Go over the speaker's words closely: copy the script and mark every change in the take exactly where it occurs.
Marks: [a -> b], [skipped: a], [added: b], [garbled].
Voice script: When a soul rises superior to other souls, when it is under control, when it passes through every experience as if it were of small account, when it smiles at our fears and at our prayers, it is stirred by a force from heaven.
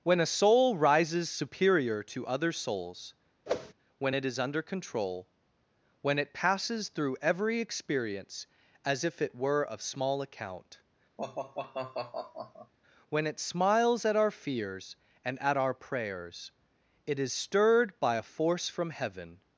When a soul rises superior to other souls, when it is under control, when it passes through every experience as if it were of small account, when it smiles at our fears and at our prayers, it is stirred by a force from heaven.